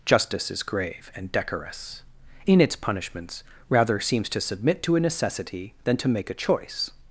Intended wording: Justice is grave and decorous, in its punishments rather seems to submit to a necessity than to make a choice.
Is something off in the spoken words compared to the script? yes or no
no